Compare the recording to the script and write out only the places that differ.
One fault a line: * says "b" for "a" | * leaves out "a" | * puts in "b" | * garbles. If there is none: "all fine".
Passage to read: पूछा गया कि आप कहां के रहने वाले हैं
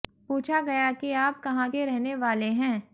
all fine